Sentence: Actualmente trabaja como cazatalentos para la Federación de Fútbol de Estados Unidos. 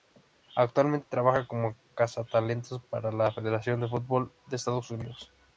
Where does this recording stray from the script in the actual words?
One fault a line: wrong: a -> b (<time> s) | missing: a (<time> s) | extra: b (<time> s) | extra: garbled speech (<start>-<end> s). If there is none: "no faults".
no faults